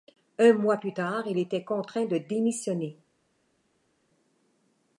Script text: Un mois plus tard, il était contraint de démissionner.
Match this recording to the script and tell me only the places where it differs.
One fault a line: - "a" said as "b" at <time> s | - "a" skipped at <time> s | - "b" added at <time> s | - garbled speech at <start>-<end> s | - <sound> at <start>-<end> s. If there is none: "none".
none